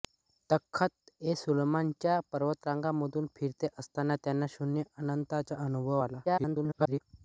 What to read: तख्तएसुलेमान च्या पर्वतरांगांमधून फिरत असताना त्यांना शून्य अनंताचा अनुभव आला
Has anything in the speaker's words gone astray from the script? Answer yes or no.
yes